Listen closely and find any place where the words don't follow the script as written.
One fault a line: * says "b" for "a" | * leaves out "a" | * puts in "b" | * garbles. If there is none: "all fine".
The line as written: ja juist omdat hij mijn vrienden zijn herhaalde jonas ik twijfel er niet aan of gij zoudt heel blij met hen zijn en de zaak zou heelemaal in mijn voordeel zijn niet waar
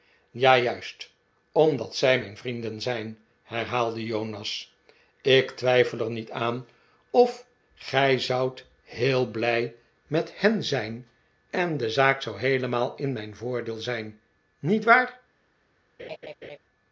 * says "zij" for "hij"